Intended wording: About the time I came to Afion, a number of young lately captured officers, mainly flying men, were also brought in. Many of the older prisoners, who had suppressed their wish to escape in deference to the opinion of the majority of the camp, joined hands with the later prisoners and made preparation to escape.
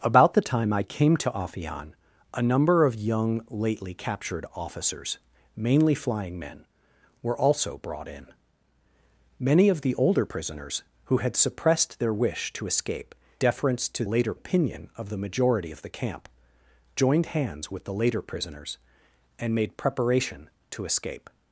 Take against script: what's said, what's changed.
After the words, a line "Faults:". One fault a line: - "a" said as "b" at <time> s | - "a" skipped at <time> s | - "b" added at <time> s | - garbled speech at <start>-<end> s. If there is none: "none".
About the time I came to Afion, a number of young lately captured officers, mainly flying men, were also brought in. Many of the older prisoners, who had suppressed their wish to escape deference to later opinion of the majority of the camp, joined hands with the later prisoners and made preparation to escape.
Faults:
- "in" skipped at 13.1 s
- "the" said as "later" at 14.1 s